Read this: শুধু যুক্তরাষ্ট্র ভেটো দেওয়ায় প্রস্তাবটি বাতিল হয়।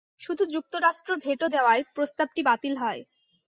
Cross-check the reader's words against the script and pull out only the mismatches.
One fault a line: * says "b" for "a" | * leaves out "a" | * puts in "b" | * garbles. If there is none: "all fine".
all fine